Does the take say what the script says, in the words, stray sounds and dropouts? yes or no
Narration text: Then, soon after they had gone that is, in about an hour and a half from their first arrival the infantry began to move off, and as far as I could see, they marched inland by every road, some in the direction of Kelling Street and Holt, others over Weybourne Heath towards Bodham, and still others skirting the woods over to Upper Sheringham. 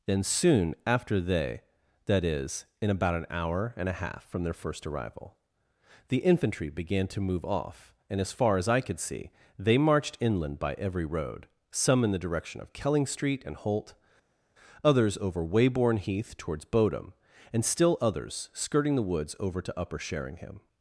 no